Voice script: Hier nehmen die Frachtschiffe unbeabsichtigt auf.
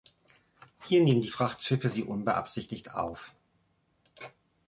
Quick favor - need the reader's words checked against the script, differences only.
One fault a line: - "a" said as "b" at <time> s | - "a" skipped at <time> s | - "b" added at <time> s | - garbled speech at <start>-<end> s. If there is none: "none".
- "sie" added at 1.9 s